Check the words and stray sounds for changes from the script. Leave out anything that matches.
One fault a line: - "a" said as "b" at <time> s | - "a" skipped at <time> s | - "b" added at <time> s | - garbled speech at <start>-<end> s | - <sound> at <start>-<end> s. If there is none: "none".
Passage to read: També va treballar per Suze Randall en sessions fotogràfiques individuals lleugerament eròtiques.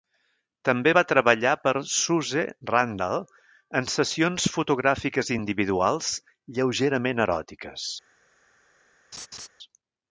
- laugh at 9.1-9.5 s